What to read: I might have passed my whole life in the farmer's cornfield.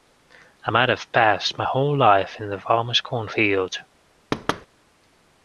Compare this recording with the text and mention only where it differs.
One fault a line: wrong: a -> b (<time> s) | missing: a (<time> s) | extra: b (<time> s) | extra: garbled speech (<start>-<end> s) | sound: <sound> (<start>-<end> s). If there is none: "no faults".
sound: thud (4.3-4.7 s)